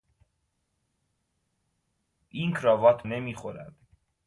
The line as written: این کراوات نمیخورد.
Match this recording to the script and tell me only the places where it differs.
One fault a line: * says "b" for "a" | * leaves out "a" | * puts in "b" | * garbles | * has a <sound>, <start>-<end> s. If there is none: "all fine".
all fine